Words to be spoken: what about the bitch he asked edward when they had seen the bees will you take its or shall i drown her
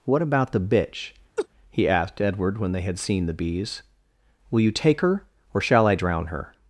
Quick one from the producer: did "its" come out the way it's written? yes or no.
no